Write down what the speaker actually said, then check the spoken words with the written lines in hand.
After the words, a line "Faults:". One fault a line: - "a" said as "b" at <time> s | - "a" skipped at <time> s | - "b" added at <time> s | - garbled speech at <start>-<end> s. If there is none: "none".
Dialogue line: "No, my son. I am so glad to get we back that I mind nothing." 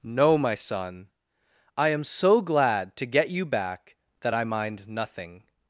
"No, my son. I am so glad to get you back that I mind nothing."
Faults:
- "we" said as "you" at 3.3 s